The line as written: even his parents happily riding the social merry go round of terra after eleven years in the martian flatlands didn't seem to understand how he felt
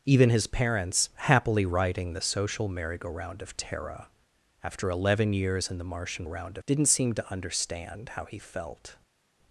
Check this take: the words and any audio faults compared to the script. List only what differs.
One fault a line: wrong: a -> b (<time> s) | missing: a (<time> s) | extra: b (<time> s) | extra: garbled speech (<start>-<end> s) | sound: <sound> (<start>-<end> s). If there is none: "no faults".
wrong: flatlands -> round (6.2 s)